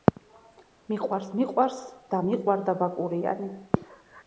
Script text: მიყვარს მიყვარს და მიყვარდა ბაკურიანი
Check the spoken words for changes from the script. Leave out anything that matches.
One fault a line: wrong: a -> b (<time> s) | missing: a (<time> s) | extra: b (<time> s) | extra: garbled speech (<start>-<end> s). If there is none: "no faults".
no faults